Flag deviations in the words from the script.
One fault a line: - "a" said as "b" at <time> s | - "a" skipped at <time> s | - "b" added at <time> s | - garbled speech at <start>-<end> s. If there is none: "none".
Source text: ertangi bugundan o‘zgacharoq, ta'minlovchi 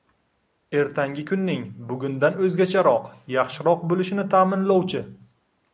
- "kunning" added at 1.3 s
- "yaxshiroq bo‘lishini" added at 3.4 s